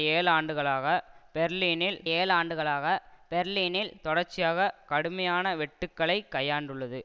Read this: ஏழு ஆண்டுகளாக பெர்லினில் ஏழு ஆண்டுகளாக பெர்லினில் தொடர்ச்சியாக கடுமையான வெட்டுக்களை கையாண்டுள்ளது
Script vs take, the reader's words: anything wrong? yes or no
no